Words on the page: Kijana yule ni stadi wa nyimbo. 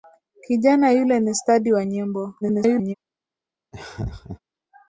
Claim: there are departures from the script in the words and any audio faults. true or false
true